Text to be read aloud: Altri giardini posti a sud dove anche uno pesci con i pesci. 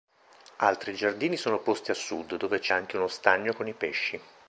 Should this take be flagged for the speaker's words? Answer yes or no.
yes